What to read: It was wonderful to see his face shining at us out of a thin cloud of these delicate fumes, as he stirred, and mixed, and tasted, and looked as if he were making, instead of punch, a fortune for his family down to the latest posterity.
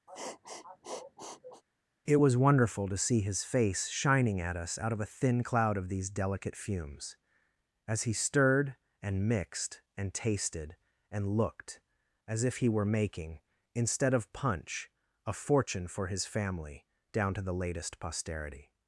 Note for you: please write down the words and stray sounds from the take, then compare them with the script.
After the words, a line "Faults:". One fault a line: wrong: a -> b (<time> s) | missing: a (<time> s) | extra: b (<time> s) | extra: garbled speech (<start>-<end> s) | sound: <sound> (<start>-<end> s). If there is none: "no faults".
It was wonderful to see his face shining at us out of a thin cloud of these delicate fumes, as he stirred, and mixed, and tasted, and looked as if he were making, instead of punch, a fortune for his family down to the latest posterity.
Faults:
sound: sniff (0.1-1.6 s)